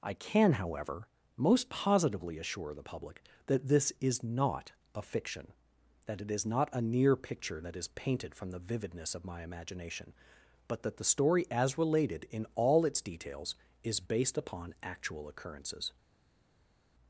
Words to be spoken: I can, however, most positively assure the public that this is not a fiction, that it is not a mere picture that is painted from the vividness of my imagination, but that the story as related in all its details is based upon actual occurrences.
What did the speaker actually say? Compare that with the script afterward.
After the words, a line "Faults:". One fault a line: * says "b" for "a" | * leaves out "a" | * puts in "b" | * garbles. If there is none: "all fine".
I can, however, most positively assure the public that this is not a fiction, that it is not a near picture that is painted from the vividness of my imagination, but that the story as related in all its details is based upon actual occurrences.
Faults:
* says "near" for "mere"